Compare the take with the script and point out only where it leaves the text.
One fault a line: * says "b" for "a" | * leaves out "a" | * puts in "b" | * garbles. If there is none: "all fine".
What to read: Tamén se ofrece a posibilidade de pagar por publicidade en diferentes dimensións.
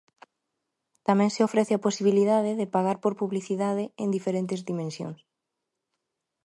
all fine